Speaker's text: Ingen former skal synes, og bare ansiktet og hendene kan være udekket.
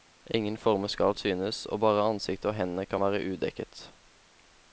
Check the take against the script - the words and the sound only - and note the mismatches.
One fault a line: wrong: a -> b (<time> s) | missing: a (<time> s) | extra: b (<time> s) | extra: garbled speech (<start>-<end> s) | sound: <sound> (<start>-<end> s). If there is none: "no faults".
no faults